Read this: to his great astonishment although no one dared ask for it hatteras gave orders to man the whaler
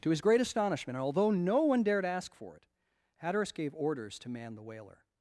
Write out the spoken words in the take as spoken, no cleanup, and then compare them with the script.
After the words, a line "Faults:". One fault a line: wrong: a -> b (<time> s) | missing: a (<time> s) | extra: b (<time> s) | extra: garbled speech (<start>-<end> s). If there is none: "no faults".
to his great astonishment although no one dared ask for it hatteras gave orders to man the whaler
Faults:
no faults